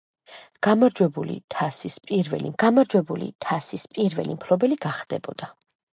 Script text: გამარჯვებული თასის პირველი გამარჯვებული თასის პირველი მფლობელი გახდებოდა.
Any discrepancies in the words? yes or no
no